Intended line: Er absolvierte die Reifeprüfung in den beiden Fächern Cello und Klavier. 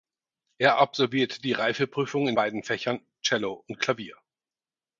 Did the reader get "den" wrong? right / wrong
wrong